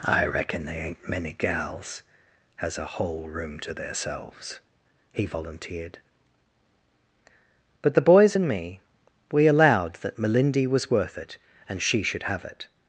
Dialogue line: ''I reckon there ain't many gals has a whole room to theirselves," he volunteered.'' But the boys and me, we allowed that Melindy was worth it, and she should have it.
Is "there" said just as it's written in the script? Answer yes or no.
no